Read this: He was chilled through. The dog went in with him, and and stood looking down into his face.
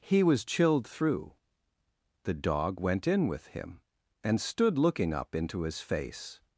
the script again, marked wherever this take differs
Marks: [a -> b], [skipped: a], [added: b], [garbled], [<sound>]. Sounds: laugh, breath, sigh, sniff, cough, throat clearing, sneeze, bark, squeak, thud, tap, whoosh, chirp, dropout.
He was chilled through. The dog went in with him, and [skipped: and] stood looking [down -> up] into his face.